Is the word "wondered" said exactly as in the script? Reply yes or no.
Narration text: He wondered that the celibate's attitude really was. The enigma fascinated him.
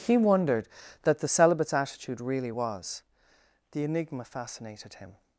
yes